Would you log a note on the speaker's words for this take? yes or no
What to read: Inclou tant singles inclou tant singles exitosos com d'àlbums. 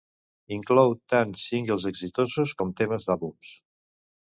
yes